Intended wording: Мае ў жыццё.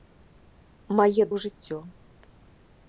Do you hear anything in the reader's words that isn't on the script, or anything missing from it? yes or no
no